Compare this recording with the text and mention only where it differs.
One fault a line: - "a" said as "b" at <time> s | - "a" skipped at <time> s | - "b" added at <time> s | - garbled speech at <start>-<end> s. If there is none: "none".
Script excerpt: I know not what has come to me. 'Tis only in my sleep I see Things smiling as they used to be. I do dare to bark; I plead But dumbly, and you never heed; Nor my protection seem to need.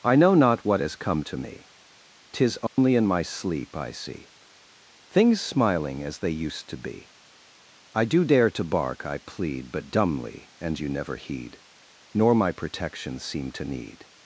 none